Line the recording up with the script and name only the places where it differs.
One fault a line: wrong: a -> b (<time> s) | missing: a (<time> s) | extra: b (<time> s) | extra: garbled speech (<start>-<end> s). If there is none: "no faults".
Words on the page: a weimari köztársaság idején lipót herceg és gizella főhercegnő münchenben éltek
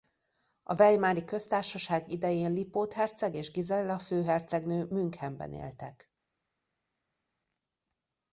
no faults